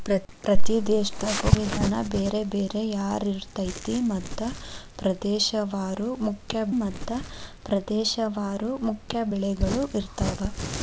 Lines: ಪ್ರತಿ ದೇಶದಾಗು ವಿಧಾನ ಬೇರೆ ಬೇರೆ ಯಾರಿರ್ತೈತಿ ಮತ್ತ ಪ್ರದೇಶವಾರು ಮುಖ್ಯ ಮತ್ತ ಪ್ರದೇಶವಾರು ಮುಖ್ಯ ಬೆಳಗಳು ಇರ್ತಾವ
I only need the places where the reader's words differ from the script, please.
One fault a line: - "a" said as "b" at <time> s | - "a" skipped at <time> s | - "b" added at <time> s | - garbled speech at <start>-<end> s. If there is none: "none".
none